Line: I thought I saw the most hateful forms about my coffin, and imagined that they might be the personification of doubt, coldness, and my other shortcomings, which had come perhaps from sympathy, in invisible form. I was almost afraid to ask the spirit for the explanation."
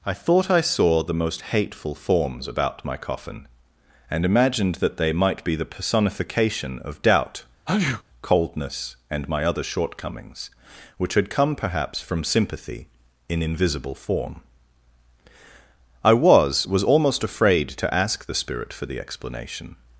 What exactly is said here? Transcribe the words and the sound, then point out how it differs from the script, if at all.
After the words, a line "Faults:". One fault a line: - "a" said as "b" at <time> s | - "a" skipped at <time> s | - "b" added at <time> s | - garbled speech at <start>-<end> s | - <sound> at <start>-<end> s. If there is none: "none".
I thought I saw the most hateful forms about my coffin, and imagined that they might be the personification of doubt, coldness, and my other shortcomings, which had come perhaps from sympathy, in invisible form. I was was almost afraid to ask the spirit for the explanation."
Faults:
- sneeze at 7.7-8.0 s
- "was" added at 16.6 s